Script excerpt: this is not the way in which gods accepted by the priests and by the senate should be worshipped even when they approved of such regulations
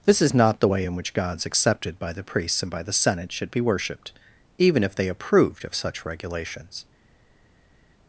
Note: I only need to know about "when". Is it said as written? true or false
false